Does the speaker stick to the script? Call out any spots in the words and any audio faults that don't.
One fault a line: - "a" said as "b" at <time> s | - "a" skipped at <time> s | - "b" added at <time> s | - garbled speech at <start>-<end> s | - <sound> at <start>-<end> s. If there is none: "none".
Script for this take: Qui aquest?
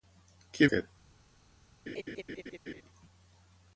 - laugh at 1.9-2.8 s